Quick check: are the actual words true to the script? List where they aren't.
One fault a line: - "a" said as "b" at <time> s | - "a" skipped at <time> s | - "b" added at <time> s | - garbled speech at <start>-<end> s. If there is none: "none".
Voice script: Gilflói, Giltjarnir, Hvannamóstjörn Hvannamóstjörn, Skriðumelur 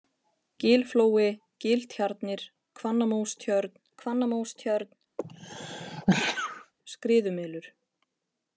none